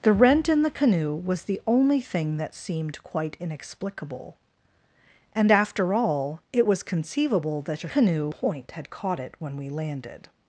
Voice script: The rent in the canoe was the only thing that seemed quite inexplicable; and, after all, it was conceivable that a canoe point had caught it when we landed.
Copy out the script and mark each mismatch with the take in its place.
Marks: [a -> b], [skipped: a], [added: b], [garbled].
The rent in the canoe was the only thing that seemed quite inexplicable; and, after all, it was conceivable that a canoe point had caught it when we landed.